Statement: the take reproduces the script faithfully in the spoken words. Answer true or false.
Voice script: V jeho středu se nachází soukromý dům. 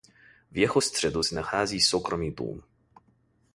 true